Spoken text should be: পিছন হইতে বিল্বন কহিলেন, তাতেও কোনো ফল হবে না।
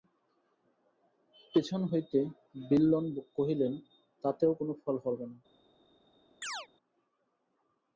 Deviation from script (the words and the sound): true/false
true